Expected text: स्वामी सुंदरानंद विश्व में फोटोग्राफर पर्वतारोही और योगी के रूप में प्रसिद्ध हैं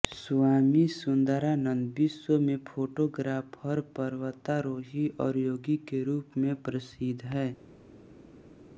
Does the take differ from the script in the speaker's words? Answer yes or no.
no